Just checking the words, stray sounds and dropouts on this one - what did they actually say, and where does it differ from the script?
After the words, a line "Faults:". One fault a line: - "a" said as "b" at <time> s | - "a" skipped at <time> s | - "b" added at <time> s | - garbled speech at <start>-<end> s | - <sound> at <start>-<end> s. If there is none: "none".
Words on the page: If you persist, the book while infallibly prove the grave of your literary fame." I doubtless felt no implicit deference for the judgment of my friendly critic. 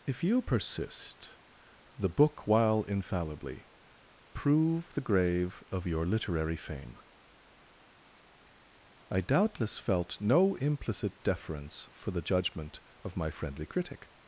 If you persist, the book while infallibly prove the grave of your literary fame." I doubtless felt no implicit deference for the judgment of my friendly critic.
Faults:
none